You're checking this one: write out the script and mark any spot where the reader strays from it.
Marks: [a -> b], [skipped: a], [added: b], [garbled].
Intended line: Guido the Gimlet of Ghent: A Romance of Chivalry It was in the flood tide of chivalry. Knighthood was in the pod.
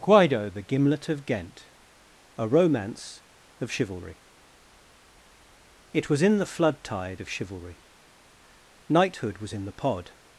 Guido the Gimlet of Ghent: A Romance of Chivalry It was in the flood tide of chivalry. Knighthood was in the pod.